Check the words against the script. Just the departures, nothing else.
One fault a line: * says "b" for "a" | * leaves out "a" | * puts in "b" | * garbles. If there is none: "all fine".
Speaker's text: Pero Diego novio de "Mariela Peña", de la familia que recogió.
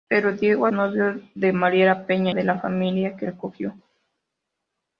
all fine